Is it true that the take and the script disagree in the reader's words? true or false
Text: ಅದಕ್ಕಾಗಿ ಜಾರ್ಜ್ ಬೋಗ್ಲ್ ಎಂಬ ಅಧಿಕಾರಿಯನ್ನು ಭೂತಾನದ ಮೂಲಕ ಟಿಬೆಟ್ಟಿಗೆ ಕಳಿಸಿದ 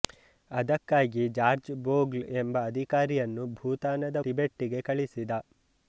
true